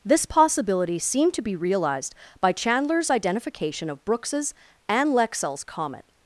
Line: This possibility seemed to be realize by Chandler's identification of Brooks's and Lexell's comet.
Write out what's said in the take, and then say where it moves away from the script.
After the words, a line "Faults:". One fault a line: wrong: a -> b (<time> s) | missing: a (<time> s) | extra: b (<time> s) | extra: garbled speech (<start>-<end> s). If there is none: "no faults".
This possibility seemed to be realized by Chandler's identification of Brooks's and Lexell's comet.
Faults:
wrong: realize -> realized (1.6 s)